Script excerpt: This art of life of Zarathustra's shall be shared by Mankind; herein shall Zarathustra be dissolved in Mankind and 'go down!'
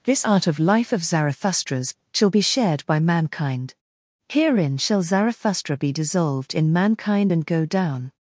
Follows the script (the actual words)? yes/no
yes